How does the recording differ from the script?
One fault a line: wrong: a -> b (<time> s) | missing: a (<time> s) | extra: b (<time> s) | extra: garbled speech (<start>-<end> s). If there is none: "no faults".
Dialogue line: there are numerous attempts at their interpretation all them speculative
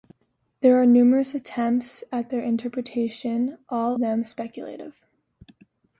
no faults